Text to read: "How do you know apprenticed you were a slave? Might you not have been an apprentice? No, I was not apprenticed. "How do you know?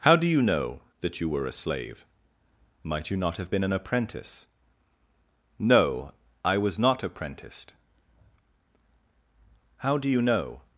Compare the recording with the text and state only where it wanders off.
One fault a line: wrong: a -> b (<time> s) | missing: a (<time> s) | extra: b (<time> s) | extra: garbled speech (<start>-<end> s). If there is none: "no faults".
wrong: apprenticed -> that (1.0 s)